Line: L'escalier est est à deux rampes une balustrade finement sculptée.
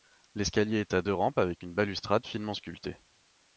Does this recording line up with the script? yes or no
no